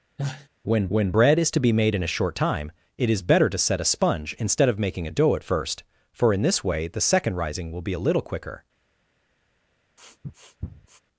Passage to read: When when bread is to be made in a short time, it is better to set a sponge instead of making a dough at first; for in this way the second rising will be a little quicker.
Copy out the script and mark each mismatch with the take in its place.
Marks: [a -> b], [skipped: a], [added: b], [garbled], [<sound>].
[sneeze] When when bread is to be made in a short time, it is better to set a sponge instead of making a dough at first; for in this way the second rising will be a little quicker. [sniff]